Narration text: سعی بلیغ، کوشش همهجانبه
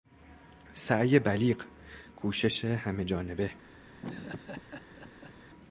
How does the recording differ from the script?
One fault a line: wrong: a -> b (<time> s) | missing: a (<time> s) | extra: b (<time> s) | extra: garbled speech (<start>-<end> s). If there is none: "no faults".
no faults